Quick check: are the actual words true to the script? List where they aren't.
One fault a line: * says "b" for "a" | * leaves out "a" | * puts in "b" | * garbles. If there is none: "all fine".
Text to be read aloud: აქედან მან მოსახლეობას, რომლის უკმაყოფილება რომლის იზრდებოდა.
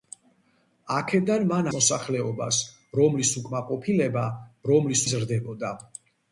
all fine